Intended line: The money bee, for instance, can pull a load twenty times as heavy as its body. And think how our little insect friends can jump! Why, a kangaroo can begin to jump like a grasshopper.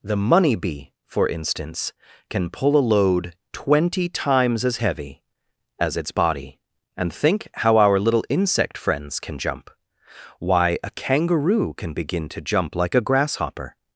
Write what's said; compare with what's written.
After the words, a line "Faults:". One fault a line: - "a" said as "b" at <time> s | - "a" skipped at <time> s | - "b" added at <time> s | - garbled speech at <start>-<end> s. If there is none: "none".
The money bee, for instance, can pull a load twenty times as heavy as its body. And think how our little insect friends can jump! Why, a kangaroo can begin to jump like a grasshopper.
Faults:
none